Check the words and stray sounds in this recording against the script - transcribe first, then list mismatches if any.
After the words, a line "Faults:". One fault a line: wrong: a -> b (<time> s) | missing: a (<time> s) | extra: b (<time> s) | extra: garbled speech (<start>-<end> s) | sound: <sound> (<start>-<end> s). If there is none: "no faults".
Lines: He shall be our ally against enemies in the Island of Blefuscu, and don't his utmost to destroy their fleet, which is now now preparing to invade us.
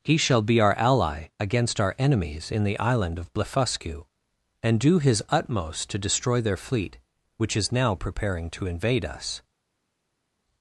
He shall be our ally against our enemies in the Island of Blefuscu, and do his utmost to destroy their fleet, which is now preparing to invade us.
Faults:
extra: our (1.8 s)
wrong: don't -> do (4.8 s)
missing: now (7.9 s)